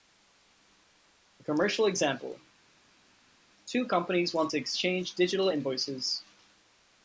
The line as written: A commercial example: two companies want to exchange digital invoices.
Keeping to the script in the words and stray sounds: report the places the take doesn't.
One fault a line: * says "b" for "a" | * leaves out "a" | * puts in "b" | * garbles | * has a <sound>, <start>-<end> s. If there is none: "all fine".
all fine